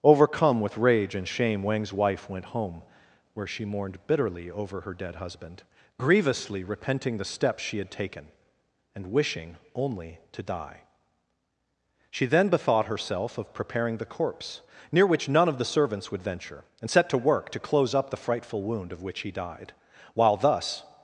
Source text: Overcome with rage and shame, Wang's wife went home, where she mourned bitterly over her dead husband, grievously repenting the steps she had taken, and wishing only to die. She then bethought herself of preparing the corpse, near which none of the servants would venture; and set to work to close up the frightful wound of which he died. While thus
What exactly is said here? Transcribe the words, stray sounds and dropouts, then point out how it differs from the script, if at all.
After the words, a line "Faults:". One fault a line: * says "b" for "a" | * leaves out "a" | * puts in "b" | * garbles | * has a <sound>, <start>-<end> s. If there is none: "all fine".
Overcome with rage and shame, Wang's wife went home, where she mourned bitterly over her dead husband, grievously repenting the steps she had taken, and wishing only to die. She then bethought herself of preparing the corpse, near which none of the servants would venture; and set to work to close up the frightful wound of which he died. While thus
Faults:
all fine